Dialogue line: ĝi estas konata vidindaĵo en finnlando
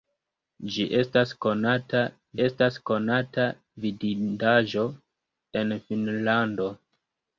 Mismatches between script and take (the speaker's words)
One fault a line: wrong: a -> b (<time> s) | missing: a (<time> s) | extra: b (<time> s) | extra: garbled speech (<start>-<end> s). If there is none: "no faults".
extra: estas konata (2.5 s)